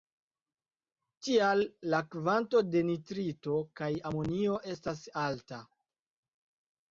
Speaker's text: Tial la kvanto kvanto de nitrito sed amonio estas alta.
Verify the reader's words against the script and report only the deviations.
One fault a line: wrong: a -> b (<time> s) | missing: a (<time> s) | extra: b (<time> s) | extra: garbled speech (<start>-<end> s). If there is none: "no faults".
missing: kvanto (2.6 s)
wrong: sed -> kaj (3.8 s)